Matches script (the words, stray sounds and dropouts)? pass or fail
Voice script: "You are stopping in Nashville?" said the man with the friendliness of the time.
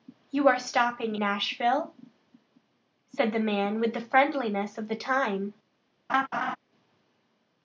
fail